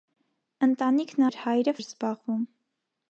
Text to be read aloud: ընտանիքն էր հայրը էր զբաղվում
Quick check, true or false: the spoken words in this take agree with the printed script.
true